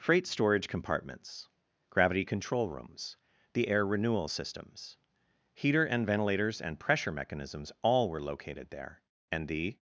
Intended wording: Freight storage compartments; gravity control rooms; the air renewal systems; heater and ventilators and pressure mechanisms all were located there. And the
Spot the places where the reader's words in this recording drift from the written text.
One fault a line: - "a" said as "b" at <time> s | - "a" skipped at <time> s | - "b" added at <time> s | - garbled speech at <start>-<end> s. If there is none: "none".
none